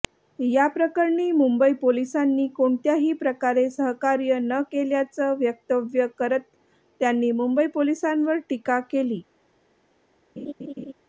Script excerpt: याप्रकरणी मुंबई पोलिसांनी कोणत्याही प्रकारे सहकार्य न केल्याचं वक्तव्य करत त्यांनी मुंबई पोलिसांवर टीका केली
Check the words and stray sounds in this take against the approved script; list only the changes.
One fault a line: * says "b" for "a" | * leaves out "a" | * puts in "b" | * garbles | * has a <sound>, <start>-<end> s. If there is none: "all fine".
* has a laugh, 10.4-10.9 s